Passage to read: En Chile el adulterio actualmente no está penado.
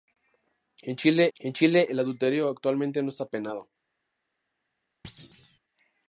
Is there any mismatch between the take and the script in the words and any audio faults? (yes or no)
yes